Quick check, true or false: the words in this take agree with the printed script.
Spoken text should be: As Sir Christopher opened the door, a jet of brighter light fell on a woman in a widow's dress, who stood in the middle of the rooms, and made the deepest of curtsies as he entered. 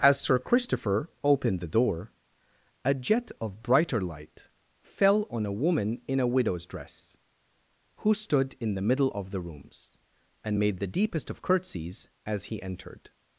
true